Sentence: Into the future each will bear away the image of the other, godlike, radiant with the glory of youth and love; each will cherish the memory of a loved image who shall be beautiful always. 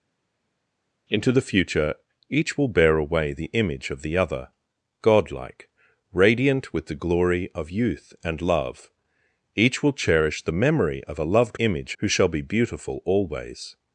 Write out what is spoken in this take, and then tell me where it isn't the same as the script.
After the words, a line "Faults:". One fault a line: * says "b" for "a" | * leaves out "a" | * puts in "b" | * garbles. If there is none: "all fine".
Into the future each will bear away the image of the other, godlike, radiant with the glory of youth and love; each will cherish the memory of a loved image who shall be beautiful always.
Faults:
all fine